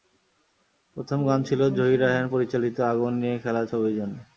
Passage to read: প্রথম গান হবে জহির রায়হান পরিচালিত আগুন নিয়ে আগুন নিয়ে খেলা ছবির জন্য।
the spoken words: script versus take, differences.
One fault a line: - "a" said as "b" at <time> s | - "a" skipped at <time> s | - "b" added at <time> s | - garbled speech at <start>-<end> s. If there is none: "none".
- "হবে" said as "ছিল" at 1.4 s
- "আগুন নিয়ে" skipped at 3.4 s